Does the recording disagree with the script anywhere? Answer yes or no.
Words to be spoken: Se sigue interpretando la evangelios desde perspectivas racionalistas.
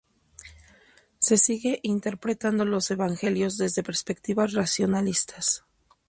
yes